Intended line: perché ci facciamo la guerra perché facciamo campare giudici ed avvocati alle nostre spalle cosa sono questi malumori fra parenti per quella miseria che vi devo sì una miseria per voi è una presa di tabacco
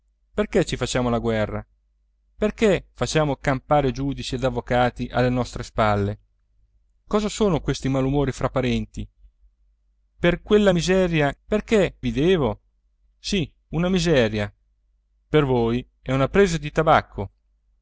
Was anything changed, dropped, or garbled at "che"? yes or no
yes